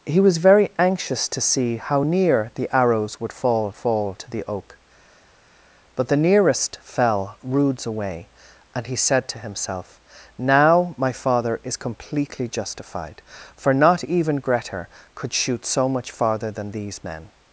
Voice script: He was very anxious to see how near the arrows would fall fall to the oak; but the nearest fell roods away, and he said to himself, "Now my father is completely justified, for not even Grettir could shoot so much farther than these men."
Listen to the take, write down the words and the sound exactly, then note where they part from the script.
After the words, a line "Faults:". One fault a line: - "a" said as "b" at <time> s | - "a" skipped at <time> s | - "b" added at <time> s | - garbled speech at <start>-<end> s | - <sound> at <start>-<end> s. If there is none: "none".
He was very anxious to see how near the arrows would fall fall to the oak; but the nearest fell roods away, and he said to himself, "Now my father is completely justified, for not even Grettir could shoot so much farther than these men."
Faults:
none